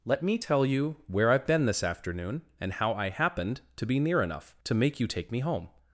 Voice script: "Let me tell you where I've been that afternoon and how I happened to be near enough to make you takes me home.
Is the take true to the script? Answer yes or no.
no